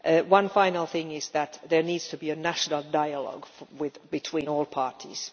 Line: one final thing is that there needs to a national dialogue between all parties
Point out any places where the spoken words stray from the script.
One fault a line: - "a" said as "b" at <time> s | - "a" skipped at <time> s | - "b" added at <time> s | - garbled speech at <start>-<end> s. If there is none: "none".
- "be" added at 2.2 s